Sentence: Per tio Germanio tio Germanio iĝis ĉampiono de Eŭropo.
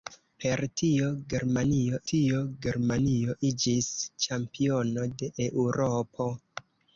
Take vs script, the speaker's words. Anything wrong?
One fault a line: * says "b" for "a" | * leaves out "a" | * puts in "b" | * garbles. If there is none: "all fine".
all fine